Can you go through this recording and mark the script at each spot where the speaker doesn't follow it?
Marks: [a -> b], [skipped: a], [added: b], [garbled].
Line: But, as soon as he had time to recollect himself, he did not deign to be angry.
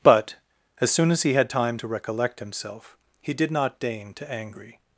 But, as soon as he had time to recollect himself, he did not deign to [skipped: be] angry.